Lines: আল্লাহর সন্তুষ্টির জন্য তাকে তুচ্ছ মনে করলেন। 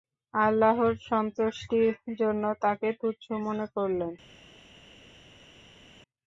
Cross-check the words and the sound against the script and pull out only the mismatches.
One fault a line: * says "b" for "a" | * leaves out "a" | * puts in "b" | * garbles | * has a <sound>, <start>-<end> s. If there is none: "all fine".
all fine